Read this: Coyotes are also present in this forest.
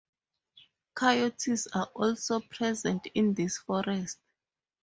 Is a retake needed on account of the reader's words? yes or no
no